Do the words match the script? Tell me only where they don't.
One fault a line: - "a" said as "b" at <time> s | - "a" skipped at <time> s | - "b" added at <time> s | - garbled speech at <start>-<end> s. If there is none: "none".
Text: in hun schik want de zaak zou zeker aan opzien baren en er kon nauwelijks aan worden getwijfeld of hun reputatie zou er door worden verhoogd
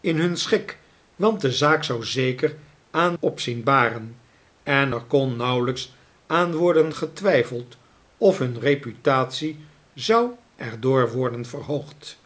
none